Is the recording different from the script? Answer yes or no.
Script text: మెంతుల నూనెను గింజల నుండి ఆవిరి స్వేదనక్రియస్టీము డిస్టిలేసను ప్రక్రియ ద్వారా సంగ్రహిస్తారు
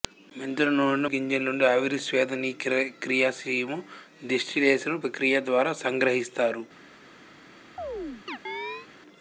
no